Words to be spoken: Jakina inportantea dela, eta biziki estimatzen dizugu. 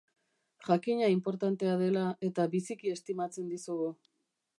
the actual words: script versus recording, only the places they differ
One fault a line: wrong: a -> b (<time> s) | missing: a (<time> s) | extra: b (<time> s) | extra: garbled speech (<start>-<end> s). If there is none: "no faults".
no faults